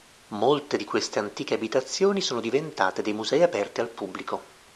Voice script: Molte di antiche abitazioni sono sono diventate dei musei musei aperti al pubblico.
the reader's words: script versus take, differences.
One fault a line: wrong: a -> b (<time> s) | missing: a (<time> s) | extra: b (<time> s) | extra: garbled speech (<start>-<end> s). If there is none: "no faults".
extra: queste (0.8 s)
missing: sono (2.4 s)
missing: musei (3.4 s)